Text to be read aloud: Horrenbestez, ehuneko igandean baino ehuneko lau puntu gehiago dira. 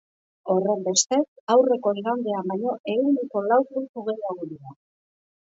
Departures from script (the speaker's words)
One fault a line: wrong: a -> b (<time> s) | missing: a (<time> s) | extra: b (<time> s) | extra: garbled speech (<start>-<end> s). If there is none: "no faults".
wrong: ehuneko -> aurreko (1.5 s)